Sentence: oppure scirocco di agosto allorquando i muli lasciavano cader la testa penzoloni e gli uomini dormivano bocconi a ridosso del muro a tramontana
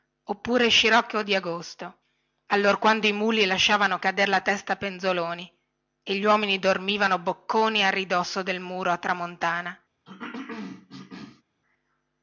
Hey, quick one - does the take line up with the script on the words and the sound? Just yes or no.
no